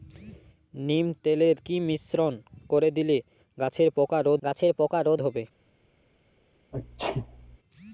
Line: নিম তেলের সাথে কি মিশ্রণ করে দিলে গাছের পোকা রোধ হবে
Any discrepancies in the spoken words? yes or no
yes